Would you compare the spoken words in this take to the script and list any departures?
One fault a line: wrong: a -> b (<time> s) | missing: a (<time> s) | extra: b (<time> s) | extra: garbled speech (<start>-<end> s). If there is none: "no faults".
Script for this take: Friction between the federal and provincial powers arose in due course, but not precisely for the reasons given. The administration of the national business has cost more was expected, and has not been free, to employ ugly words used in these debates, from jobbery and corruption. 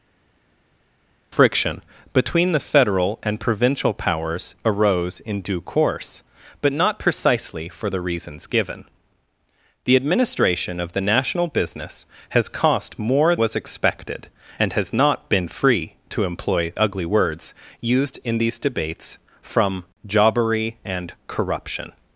no faults